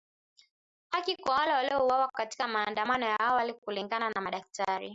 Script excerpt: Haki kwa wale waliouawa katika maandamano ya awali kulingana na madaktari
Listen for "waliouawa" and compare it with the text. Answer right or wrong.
right